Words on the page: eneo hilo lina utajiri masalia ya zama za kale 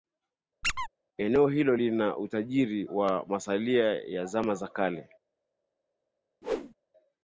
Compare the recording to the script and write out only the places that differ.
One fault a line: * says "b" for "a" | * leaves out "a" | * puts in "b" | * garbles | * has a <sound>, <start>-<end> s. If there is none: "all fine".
* has a squeak, 0.6-0.9 s
* puts in "wa"
* has a whoosh, 6.4-6.7 s